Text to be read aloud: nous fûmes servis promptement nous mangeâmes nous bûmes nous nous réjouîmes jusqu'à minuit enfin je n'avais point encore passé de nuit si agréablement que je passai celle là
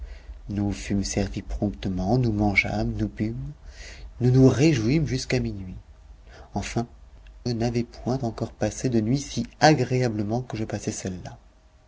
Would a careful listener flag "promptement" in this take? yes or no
no